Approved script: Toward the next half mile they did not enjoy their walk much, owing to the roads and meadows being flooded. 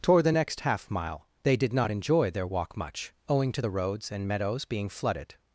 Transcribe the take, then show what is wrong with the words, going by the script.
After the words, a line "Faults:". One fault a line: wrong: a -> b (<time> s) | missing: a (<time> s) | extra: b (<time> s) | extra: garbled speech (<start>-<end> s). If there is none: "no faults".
Toward the next half mile they did not enjoy their walk much, owing to the roads and meadows being flooded.
Faults:
no faults